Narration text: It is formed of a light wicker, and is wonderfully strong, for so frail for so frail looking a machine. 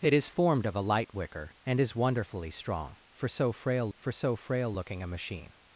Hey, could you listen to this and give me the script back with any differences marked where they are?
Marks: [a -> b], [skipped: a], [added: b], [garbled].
It is formed of a light wicker, and is wonderfully strong, for so frail for so frail looking a machine.